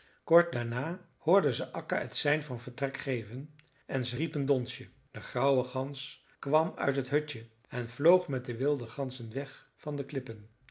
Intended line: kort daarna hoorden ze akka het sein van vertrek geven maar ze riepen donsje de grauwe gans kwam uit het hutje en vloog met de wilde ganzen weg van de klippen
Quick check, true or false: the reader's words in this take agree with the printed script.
false